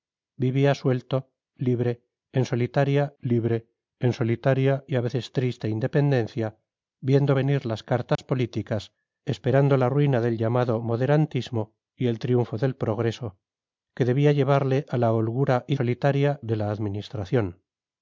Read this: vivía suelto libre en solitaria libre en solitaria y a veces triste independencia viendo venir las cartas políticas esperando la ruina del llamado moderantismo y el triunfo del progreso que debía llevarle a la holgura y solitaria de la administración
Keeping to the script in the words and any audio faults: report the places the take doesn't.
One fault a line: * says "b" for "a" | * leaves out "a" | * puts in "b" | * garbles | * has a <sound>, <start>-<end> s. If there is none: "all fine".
* has a dropout, 8.1-8.2 s